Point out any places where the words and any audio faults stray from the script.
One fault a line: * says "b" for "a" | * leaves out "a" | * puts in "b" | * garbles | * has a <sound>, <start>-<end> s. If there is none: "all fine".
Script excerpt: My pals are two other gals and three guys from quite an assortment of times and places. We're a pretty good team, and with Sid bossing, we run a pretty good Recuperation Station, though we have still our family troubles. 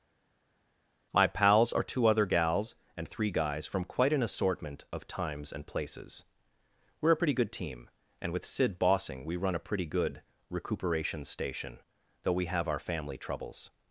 * leaves out "still"